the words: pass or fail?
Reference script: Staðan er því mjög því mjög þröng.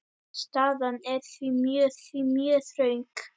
pass